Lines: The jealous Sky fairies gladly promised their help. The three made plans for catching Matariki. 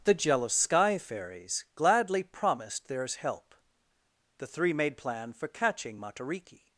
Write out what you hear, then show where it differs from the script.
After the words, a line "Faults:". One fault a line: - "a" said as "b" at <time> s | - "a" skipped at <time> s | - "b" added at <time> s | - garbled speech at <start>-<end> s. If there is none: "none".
The jealous Sky fairies gladly promised theirs help. The three made plan for catching Matariki.
Faults:
- "their" said as "theirs" at 2.9 s
- "plans" said as "plan" at 5.0 s